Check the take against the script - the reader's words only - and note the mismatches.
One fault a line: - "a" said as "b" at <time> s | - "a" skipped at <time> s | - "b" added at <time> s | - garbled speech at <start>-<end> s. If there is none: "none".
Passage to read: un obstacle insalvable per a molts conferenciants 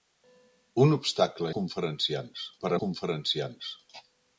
- "insalvable" said as "conferenciants" at 1.6 s
- "molts" skipped at 2.8 s